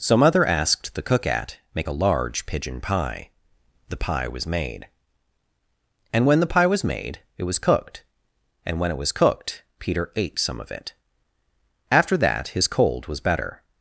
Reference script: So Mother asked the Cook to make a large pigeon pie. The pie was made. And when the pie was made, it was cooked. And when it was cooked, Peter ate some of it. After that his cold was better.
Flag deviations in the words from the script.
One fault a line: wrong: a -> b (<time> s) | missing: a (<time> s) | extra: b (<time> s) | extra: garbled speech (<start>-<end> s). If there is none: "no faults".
wrong: to -> at (1.3 s)